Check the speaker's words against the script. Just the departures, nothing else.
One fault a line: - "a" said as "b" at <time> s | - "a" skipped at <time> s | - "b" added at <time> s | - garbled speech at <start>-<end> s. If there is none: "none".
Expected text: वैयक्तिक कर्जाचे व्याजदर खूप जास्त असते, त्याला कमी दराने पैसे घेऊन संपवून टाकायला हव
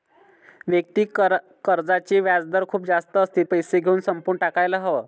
- "त्याला कमी दराने" skipped at 3.4 s